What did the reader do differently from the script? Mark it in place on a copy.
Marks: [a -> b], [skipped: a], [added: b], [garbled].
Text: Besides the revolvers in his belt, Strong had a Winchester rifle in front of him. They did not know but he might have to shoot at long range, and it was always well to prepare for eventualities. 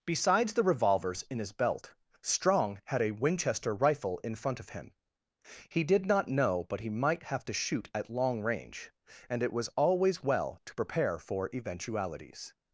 Besides the revolvers in his belt, Strong had a Winchester rifle in front of him. [They -> He] did not know but he might have to shoot at long range, and it was always well to prepare for eventualities.